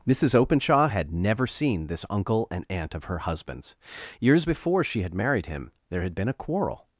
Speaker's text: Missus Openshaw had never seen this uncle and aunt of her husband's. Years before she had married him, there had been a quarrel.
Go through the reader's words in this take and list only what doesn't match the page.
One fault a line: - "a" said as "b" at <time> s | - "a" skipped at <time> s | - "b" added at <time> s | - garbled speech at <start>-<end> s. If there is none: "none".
none